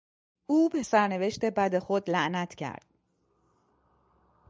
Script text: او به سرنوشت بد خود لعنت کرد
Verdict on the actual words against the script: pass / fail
pass